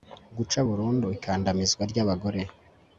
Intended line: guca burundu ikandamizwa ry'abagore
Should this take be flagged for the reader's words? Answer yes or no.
no